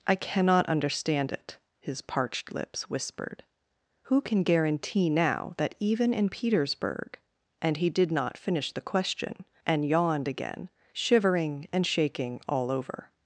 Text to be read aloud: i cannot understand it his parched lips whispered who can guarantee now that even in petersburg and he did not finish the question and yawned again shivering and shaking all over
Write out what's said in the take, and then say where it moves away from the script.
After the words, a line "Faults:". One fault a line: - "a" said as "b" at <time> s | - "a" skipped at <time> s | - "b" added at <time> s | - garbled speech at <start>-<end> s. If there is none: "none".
i cannot understand it his parched lips whispered who can guarantee now that even in petersburg and he did not finish the question and yawned again shivering and shaking all over
Faults:
none